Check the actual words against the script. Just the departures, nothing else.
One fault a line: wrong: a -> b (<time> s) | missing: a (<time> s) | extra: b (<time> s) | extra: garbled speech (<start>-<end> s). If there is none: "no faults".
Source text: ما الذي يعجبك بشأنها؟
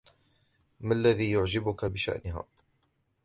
no faults